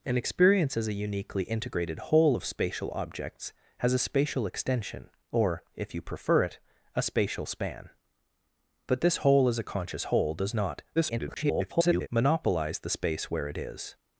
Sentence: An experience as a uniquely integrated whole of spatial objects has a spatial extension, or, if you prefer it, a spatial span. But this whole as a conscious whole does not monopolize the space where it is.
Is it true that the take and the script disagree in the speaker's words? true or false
true